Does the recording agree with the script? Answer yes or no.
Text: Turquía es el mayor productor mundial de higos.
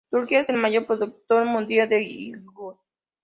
yes